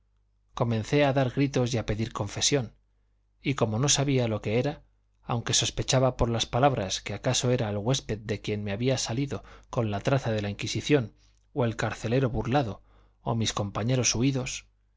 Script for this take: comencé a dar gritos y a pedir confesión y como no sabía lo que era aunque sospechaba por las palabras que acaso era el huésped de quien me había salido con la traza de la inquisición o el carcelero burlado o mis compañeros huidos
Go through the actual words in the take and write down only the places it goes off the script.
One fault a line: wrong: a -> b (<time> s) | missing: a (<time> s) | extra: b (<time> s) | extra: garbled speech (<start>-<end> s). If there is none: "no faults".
no faults